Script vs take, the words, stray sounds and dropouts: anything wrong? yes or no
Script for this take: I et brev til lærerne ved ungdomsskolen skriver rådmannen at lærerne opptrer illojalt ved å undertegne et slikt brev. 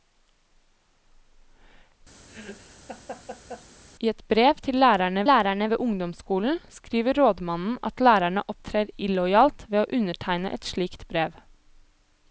yes